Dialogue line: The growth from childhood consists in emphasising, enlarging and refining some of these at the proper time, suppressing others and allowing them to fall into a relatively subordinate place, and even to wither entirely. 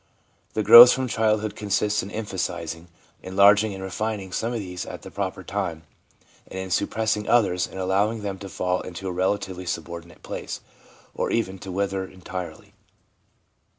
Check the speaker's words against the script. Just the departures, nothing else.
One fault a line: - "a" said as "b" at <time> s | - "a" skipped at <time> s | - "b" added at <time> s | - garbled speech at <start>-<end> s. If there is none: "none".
- "and in" added at 6.5 s
- "and" said as "or" at 11.1 s